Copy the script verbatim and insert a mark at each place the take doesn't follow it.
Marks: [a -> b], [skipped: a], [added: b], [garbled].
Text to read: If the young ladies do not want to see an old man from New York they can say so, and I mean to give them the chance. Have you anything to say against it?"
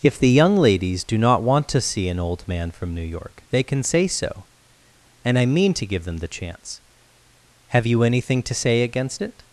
If the young ladies do not want to see an old man from New York they can say so, and I mean to give them the chance. Have you anything to say against it?"